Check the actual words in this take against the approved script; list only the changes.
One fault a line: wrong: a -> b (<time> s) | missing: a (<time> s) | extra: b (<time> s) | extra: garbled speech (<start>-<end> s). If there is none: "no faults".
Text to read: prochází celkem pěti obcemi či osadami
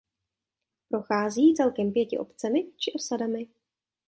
no faults